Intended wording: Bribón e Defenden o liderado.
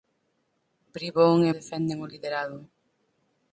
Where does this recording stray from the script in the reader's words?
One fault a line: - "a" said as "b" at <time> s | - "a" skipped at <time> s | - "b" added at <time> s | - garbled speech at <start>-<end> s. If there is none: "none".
none